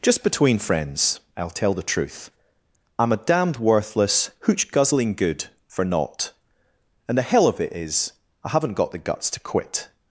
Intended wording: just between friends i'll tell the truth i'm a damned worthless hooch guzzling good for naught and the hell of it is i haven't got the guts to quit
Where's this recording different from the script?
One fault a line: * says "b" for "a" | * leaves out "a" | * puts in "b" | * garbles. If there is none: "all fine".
all fine